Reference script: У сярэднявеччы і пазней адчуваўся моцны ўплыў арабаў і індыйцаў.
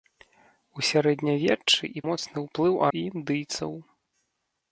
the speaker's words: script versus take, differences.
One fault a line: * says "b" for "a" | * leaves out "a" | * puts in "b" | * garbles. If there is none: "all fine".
* leaves out "пазней адчуваўся"
* leaves out "арабаў"